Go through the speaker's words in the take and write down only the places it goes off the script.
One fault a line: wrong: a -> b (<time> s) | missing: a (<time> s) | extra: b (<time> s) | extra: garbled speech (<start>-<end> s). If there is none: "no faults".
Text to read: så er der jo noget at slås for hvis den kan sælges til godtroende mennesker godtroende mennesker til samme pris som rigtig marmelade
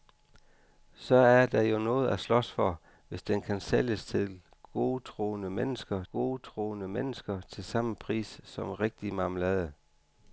no faults